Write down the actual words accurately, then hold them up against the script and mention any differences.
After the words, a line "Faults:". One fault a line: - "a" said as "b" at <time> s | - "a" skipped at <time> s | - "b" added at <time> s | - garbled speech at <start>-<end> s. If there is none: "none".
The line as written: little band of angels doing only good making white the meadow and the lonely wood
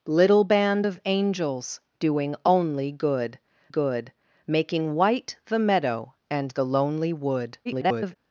little band of angels doing only good good making white the meadow and the lonely wood [garbled]
Faults:
- "good" added at 3.7 s
- garbled speech at 7.6-8.2 s